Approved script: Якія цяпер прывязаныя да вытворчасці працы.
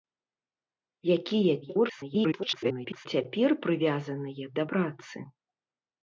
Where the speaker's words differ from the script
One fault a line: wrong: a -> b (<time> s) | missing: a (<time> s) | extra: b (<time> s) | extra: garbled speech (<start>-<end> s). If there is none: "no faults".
extra: garbled speech (1.6-3.1 s)
missing: вытворчасці (4.7 s)